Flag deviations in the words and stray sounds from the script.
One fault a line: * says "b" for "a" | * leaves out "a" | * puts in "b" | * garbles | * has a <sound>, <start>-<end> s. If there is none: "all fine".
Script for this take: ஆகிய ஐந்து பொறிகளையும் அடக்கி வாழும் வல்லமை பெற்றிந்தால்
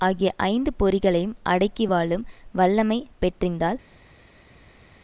all fine